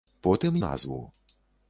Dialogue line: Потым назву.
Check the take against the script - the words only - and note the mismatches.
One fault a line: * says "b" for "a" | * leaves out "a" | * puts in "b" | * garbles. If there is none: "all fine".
all fine